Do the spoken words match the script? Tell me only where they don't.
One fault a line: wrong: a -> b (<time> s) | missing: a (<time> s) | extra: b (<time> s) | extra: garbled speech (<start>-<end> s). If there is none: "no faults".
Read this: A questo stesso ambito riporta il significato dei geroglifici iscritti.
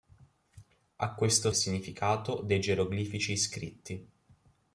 missing: stesso ambito riporta (1.5 s)